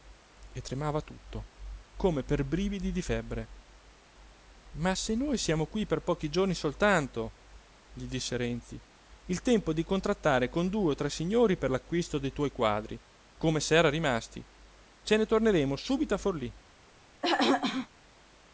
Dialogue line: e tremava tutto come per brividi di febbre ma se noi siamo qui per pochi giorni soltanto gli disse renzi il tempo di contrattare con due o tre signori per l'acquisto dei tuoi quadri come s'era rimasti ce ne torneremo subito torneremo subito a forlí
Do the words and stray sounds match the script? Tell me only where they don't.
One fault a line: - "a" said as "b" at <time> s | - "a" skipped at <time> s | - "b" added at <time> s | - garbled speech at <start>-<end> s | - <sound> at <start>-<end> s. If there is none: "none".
- "torneremo subito" skipped at 16.1 s
- throat clearing at 17.2-17.9 s